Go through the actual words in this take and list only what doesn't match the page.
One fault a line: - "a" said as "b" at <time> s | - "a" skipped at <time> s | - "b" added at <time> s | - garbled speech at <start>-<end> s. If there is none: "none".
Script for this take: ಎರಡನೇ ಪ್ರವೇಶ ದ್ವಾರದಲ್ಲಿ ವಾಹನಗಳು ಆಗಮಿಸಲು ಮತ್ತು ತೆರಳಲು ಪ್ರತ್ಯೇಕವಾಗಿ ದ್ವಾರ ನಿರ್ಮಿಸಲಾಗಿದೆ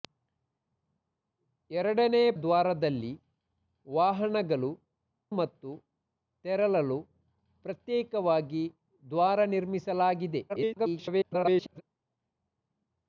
- "ಪ್ರವೇಶ" skipped at 2.3 s
- "ಆಗಮಿಸಲು" skipped at 4.7 s
- garbled speech at 10.5-11.8 s